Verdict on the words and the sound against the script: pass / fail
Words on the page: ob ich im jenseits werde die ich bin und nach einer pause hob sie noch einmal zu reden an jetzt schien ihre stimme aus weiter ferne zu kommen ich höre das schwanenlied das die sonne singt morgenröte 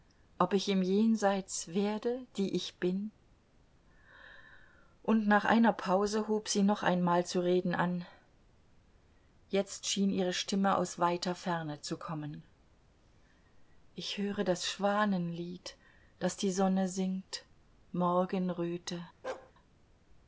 fail